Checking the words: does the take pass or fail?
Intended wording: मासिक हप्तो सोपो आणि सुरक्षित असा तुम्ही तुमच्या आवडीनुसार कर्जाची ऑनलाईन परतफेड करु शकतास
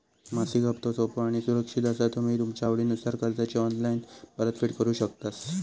pass